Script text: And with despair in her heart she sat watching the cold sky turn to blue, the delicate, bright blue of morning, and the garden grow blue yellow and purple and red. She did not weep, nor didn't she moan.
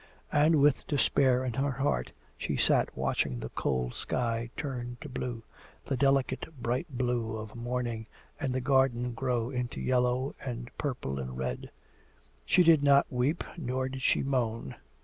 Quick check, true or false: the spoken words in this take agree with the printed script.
false